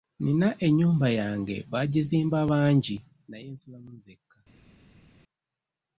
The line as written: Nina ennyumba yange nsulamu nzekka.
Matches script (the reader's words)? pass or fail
fail